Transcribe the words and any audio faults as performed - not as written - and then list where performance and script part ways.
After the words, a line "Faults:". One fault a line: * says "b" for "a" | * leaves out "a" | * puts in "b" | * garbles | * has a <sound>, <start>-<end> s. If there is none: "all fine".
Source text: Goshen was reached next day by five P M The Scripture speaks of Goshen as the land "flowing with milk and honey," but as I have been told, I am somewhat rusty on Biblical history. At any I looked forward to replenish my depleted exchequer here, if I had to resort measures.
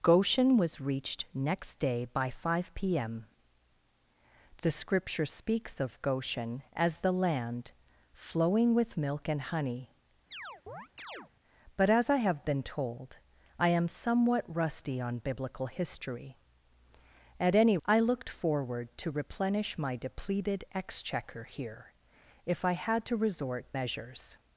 Goshen was reached next day by five P M The Scripture speaks of Goshen as the land "flowing with milk and honey," but as I have been told, I am somewhat rusty on Biblical history. At any I looked forward to replenish my depleted exchequer here, if I had to resort measures.
Faults:
* has a chirp, 10.3-11.3 s